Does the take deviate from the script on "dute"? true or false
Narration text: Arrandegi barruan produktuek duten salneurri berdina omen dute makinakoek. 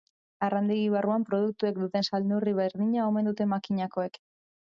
false